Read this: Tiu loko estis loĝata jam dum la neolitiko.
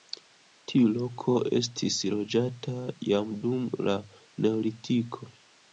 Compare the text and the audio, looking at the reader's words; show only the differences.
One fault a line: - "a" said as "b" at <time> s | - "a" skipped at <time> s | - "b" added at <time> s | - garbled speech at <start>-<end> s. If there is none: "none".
none